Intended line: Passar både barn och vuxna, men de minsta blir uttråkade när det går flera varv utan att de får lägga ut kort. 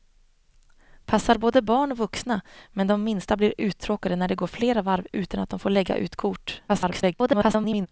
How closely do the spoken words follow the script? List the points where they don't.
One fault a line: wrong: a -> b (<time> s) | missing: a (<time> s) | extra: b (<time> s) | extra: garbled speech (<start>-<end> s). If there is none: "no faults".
extra: garbled speech (6.7-7.9 s)